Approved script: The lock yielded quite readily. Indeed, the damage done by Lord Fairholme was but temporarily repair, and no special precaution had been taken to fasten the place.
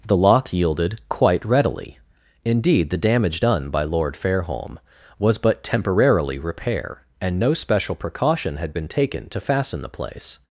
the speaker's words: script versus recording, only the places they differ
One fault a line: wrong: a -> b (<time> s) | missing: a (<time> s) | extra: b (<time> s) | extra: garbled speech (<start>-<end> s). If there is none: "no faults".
no faults